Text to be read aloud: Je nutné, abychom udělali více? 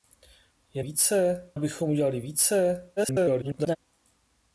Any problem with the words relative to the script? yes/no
yes